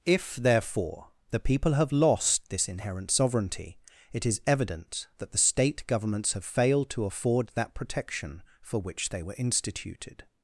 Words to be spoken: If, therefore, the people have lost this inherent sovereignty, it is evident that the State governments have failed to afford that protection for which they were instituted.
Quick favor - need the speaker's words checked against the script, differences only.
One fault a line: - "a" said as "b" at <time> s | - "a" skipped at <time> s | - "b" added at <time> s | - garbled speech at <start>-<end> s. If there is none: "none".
none